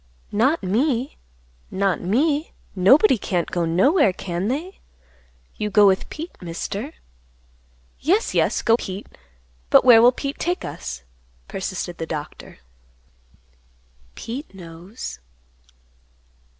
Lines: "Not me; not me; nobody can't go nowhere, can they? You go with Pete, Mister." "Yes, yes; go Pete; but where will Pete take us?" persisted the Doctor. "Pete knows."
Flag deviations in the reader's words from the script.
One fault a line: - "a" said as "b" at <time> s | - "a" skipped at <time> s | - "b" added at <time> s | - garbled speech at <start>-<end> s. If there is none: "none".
none